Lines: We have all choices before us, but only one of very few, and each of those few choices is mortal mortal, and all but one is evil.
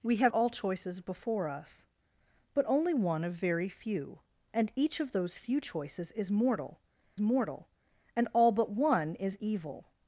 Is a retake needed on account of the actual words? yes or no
no